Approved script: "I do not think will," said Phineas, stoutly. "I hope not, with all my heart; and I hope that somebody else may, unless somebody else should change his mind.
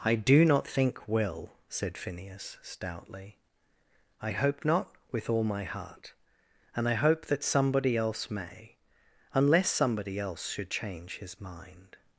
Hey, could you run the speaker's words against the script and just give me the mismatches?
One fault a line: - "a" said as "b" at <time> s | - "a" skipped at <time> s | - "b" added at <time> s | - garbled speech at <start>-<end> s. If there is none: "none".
none